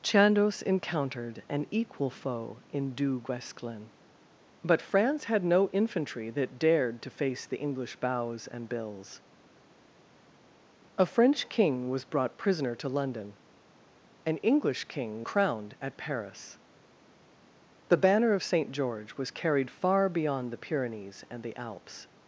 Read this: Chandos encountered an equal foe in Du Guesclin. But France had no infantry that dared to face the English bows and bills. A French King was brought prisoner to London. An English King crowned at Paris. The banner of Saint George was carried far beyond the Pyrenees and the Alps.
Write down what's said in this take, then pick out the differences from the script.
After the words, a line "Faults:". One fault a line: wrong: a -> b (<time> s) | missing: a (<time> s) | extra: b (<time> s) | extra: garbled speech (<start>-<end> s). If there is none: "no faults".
Chandos encountered an equal foe in Du Guesclin. But France had no infantry that dared to face the English bows and bills. A French King was brought prisoner to London. An English King crowned at Paris. The banner of Saint George was carried far beyond the Pyrenees and the Alps.
Faults:
no faults